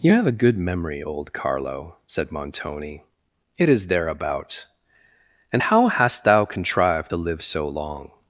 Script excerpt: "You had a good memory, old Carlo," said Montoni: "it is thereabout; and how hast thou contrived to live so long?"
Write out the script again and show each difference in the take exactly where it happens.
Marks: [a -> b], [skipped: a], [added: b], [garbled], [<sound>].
"You [had -> have] a good memory, old Carlo," said Montoni: "it is thereabout; and how hast thou contrived to live so long?"